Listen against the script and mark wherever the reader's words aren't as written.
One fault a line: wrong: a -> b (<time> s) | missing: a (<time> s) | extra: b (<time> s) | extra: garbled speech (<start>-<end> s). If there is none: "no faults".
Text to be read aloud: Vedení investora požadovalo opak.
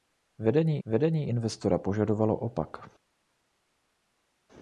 extra: vedení (0.9 s)